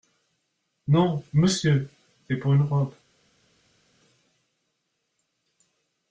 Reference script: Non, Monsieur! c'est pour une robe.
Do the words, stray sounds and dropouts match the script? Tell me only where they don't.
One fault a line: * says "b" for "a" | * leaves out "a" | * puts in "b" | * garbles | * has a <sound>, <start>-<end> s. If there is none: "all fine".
all fine